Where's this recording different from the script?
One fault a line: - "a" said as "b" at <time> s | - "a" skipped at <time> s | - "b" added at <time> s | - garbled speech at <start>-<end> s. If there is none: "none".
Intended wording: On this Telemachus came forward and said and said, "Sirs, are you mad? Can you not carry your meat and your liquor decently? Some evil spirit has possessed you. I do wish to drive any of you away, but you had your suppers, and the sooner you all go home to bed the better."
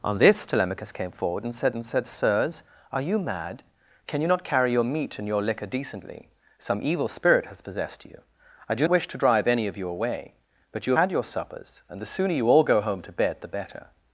none